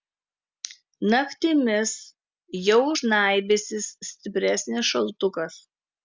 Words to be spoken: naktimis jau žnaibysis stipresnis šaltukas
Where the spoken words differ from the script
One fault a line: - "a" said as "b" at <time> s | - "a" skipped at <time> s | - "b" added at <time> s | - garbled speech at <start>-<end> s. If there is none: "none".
none